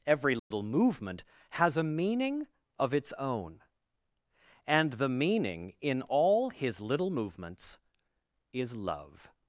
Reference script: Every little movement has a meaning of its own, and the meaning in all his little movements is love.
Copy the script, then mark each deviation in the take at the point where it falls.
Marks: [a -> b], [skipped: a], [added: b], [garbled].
Every little movement has a meaning of its own, and the meaning in all his little movements is love.